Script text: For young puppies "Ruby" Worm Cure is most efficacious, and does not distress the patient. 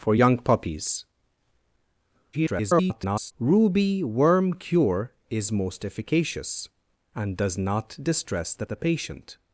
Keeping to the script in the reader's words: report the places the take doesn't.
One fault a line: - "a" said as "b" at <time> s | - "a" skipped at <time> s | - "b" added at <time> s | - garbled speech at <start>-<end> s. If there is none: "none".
- garbled speech at 2.3-3.3 s
- "the" added at 8.6 s